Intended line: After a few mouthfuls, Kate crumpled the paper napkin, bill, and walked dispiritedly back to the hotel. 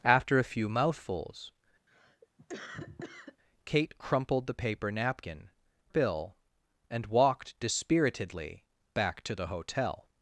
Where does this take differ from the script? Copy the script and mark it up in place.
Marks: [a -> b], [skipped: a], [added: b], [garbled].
After a few mouthfuls, Kate crumpled the paper napkin, bill, and walked dispiritedly back to the hotel.